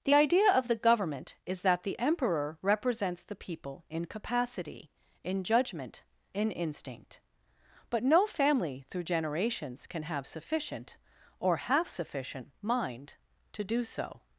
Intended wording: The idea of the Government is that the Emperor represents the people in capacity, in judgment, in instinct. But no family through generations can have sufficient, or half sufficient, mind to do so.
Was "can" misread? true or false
false